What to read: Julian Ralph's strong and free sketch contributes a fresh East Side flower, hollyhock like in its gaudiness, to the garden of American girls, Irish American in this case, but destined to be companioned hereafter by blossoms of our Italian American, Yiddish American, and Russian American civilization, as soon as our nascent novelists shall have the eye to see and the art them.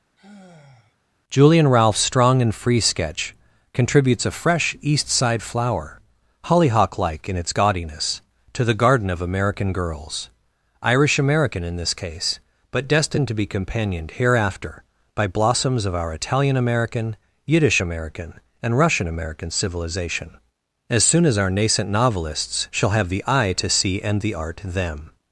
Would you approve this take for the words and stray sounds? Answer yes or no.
no